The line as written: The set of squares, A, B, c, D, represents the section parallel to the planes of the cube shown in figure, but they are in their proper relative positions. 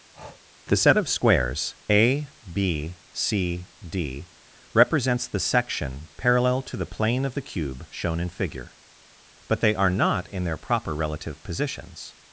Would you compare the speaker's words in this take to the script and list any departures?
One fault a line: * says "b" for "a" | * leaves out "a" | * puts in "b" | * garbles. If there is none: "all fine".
* says "plane" for "planes"
* puts in "not"